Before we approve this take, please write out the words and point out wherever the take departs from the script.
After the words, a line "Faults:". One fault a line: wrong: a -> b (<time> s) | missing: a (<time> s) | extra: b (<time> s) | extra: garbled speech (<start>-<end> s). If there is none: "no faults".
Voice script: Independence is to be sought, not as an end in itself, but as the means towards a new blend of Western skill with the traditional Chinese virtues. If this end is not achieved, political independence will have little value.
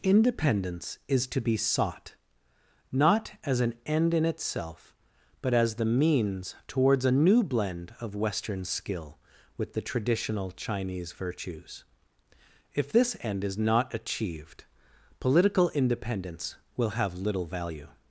Independence is to be sought, not as an end in itself, but as the means towards a new blend of Western skill with the traditional Chinese virtues. If this end is not achieved, political independence will have little value.
Faults:
no faults